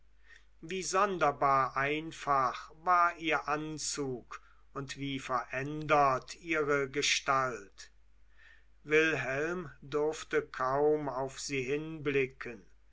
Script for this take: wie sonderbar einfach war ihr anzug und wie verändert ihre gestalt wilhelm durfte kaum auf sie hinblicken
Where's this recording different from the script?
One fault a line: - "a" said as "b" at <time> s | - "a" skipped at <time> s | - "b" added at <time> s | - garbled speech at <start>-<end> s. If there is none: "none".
none